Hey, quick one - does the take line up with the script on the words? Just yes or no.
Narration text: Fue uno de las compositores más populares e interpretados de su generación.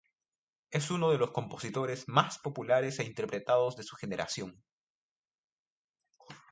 no